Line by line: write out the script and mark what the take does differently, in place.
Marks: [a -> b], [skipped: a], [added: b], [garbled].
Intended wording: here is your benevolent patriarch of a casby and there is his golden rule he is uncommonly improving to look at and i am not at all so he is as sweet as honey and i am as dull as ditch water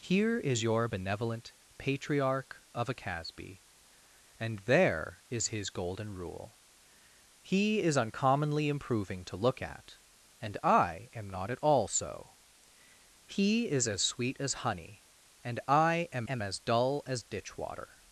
here is your benevolent patriarch of a casby and there is his golden rule he is uncommonly improving to look at and i am not at all so he is as sweet as honey and i am [added: am] as dull as ditch water